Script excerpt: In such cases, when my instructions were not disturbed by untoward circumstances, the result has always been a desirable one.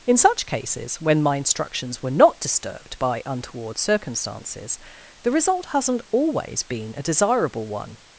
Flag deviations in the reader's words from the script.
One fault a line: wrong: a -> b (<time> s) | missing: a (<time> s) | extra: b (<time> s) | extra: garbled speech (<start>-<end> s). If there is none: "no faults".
wrong: has -> hasn't (5.7 s)